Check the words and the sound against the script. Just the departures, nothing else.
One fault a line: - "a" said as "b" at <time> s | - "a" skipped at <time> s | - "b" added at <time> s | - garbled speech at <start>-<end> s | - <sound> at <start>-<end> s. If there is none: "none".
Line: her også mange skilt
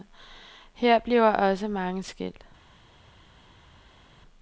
- "bliver" added at 1.0 s